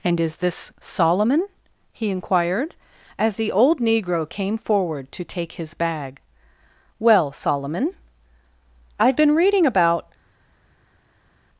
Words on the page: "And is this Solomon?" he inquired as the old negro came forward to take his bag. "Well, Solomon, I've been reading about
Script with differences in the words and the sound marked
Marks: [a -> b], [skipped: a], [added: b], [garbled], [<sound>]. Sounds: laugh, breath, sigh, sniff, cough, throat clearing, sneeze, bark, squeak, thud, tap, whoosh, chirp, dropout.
"And is this Solomon?" he inquired as the old negro came forward to take his bag. "Well, Solomon, I've been reading about